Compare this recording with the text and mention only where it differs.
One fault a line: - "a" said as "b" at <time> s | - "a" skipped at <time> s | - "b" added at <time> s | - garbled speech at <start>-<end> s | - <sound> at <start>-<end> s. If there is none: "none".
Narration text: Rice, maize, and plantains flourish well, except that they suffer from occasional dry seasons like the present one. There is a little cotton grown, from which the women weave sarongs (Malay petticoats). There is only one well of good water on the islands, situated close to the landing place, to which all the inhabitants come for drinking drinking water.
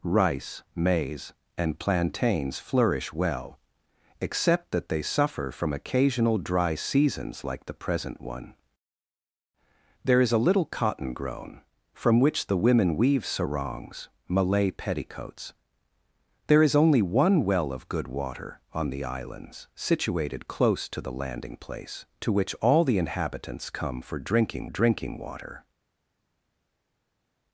none